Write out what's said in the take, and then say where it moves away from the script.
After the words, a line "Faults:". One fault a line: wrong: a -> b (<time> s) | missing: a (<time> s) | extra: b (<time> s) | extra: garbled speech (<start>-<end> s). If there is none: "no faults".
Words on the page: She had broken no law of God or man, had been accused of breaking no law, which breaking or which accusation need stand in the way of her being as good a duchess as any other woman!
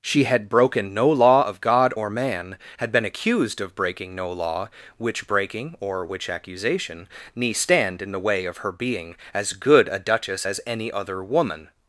She had broken no law of God or man, had been accused of breaking no law, which breaking or which accusation ne stand in the way of her being as good a duchess as any other woman!
Faults:
wrong: need -> ne (7.3 s)